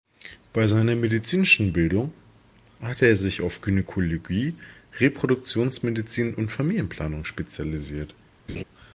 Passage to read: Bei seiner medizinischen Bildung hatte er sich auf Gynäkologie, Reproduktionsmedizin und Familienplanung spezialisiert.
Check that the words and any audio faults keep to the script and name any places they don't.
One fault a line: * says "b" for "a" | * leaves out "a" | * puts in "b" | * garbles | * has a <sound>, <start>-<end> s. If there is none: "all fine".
* has a laugh, 8.5-8.6 s